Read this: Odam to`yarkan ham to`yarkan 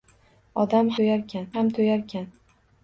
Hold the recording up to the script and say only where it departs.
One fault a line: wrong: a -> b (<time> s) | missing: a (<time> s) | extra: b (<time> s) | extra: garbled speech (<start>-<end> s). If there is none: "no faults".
no faults